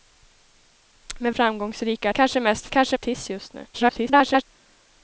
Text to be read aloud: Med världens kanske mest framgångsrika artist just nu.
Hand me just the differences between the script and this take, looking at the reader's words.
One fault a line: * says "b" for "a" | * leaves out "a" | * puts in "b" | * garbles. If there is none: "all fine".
* says "framgångsrika" for "världens"
* says "kanske" for "framgångsrika"
* garbles